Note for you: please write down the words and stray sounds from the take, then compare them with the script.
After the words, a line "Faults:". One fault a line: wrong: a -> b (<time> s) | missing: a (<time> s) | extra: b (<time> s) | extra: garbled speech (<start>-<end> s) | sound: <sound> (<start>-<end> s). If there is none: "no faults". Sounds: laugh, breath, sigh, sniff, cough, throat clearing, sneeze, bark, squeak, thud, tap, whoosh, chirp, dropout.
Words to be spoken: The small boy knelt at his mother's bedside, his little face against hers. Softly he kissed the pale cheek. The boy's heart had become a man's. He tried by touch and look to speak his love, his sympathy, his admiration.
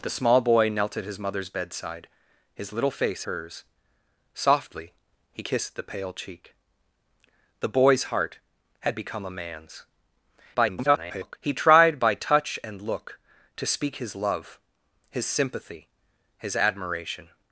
The small boy knelt at his mother's bedside, his little face hers. Softly he kissed the pale cheek. The boy's heart had become a man's. [garbled] He tried by touch and look to speak his love, his sympathy, his admiration.
Faults:
missing: against (3.2 s)
extra: garbled speech (10.5-11.4 s)